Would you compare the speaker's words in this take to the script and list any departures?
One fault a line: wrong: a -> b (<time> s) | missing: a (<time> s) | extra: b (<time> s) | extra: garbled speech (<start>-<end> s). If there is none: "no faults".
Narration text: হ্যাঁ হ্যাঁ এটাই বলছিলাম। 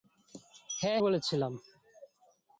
missing: হ্যাঁ এটাই (1.0 s)